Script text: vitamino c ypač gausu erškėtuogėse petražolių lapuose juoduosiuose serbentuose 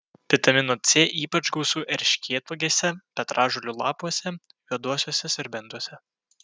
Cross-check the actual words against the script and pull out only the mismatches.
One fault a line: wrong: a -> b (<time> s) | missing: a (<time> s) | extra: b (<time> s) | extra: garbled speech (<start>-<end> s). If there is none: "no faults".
no faults